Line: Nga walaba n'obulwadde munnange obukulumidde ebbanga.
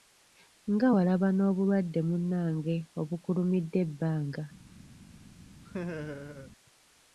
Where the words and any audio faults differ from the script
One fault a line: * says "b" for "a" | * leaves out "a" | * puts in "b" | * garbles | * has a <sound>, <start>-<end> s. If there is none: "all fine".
* has a laugh, 5.6-6.5 s